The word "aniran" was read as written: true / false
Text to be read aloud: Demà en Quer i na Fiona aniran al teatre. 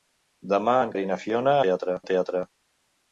false